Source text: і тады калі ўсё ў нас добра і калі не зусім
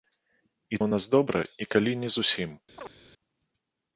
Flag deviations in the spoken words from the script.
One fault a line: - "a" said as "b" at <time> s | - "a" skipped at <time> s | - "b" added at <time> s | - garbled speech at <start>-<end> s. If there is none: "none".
- "тады калі ўсё" skipped at 0.8 s